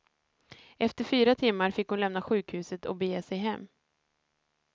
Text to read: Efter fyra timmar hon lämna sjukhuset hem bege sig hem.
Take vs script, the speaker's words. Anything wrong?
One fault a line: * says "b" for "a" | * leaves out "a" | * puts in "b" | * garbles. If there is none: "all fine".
* puts in "fick"
* says "och" for "hem"